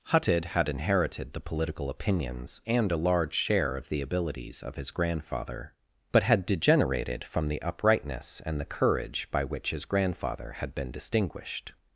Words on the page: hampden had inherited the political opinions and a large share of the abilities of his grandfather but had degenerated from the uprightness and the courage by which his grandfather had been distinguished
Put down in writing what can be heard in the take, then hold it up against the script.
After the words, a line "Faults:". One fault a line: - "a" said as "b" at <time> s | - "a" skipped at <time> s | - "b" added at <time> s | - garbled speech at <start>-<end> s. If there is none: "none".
hutted had inherited the political opinions and a large share of the abilities of his grandfather but had degenerated from the uprightness and the courage by which his grandfather had been distinguished
Faults:
- "hampden" said as "hutted" at 0.1 s